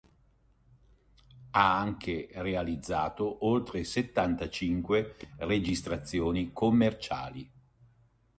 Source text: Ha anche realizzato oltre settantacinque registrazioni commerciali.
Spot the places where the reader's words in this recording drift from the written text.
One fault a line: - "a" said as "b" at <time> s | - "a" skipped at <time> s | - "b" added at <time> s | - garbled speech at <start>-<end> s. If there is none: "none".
none